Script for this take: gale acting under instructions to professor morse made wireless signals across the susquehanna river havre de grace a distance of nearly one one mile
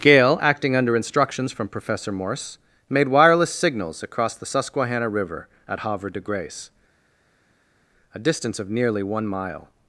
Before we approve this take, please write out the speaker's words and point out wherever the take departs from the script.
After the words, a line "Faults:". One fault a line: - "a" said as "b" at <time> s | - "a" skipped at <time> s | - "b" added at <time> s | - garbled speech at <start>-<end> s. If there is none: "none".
gale acting under instructions from professor morse made wireless signals across the susquehanna river at havre de grace a distance of nearly one mile
Faults:
- "to" said as "from" at 1.5 s
- "at" added at 5.7 s
- "one" skipped at 9.3 s